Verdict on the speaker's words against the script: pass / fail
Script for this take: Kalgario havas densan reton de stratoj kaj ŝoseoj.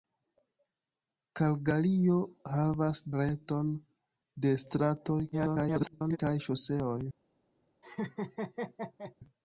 fail